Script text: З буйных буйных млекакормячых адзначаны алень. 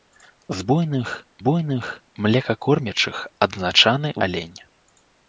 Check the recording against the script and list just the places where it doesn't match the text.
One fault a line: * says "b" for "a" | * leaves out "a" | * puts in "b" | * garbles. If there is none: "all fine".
all fine